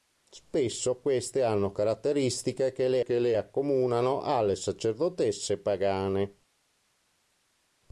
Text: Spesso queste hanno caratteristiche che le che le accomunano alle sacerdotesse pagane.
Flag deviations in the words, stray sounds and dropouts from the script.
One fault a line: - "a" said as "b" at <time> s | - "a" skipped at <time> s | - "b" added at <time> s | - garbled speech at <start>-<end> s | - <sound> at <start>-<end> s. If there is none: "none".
none